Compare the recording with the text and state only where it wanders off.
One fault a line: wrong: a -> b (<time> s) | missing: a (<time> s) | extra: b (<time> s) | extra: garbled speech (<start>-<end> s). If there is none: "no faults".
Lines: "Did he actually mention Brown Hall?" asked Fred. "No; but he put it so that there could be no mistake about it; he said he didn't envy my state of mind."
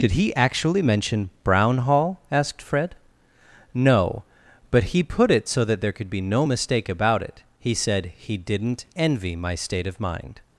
no faults